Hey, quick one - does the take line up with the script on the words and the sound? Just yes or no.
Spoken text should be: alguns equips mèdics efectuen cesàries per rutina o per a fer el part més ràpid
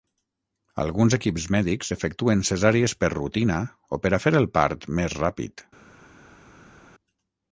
yes